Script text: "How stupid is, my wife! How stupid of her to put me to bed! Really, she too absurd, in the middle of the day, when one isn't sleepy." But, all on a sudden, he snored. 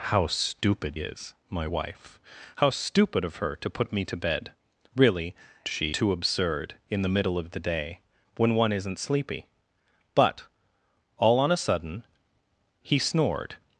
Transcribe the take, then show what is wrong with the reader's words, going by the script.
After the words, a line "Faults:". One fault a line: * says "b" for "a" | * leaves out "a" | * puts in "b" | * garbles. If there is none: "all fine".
"How stupid is, my wife! How stupid of her to put me to bed! Really, she too absurd, in the middle of the day, when one isn't sleepy." But, all on a sudden, he snored.
Faults:
all fine